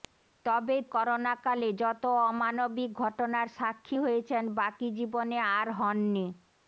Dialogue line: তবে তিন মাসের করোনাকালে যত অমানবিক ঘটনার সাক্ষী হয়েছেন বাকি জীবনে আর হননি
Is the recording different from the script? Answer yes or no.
yes